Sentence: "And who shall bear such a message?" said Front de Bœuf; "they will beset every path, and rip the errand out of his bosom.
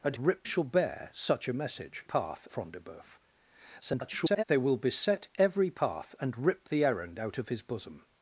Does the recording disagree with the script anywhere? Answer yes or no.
yes